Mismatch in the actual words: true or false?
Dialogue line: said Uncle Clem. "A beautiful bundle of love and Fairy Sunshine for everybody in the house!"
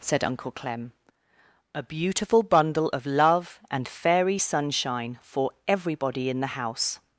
false